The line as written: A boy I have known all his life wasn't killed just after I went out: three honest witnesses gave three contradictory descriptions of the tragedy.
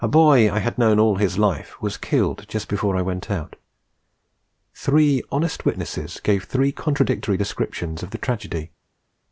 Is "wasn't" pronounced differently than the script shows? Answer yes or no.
yes